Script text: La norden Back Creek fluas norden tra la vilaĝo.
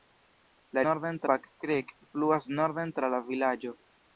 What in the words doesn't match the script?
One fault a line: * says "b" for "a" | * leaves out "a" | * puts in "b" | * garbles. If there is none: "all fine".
all fine